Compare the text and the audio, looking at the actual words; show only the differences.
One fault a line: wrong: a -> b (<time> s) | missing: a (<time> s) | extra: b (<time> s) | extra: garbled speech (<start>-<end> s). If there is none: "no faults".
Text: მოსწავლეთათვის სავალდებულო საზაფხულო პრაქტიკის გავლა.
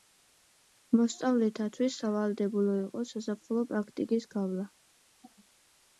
extra: იყო (2.8 s)